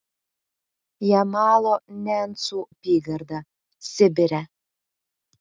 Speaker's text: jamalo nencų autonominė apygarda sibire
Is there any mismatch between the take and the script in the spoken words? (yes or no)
yes